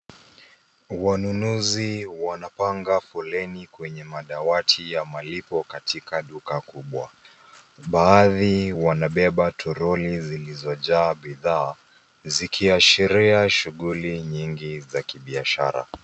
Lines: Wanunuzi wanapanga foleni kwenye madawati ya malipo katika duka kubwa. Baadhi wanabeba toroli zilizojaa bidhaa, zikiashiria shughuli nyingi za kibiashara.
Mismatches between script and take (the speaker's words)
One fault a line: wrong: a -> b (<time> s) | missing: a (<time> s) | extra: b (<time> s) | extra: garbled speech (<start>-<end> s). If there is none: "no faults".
no faults